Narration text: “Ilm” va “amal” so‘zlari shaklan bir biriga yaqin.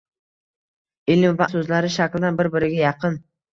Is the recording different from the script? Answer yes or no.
yes